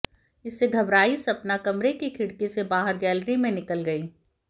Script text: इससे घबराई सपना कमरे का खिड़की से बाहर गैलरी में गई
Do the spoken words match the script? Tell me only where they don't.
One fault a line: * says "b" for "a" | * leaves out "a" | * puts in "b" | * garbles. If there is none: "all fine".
* says "की" for "का"
* puts in "निकल"